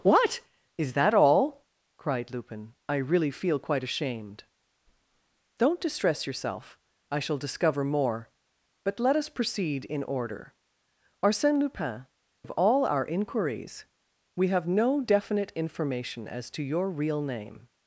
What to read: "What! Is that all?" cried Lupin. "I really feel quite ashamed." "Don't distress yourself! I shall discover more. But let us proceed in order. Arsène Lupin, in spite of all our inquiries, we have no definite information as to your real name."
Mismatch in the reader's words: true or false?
true